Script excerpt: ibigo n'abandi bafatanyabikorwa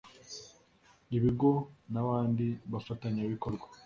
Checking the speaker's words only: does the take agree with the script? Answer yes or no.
yes